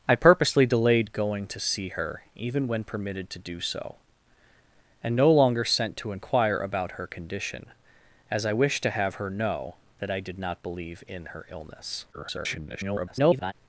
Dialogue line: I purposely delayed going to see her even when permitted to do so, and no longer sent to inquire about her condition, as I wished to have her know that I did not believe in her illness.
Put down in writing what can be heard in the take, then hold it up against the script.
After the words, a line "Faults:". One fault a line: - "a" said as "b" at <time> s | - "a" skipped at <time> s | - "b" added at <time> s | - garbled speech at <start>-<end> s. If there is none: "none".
I purposely delayed going to see her even when permitted to do so, and no longer sent to inquire about her condition, as I wished to have her know that I did not believe in her illness. [garbled]
Faults:
- garbled speech at 12.1-13.5 s